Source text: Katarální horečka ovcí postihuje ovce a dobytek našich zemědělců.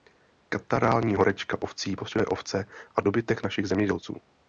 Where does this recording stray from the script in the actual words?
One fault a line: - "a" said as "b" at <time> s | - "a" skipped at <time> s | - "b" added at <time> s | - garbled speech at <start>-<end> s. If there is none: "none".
none